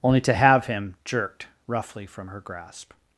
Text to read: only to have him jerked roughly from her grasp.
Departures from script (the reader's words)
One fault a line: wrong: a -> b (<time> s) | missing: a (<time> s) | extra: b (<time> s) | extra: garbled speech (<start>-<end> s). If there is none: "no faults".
no faults